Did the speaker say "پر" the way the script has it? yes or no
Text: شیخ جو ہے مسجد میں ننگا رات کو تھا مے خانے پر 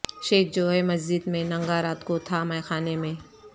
no